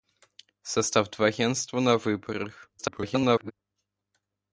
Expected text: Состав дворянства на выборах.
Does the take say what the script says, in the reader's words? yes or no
no